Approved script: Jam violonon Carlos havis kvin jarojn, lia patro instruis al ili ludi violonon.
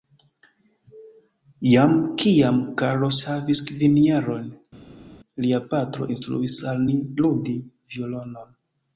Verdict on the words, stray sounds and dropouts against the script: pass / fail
fail